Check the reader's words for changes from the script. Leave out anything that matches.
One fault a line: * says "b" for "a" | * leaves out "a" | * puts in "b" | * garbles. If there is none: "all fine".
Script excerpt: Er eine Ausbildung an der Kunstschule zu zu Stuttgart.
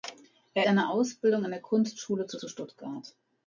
all fine